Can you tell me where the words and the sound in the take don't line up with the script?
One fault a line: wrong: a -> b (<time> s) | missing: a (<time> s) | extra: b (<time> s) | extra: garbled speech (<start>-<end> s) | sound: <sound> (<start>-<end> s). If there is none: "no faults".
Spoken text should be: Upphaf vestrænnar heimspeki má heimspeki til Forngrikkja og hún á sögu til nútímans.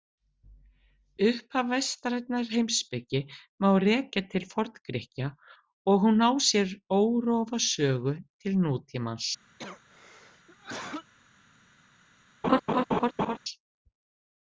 wrong: heimspeki -> rekja (3.9 s)
extra: sér órofa (6.5 s)
sound: cough (9.6-11.1 s)
sound: laugh (12.4-13.4 s)